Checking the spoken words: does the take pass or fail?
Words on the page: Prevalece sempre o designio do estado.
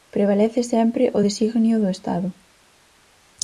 pass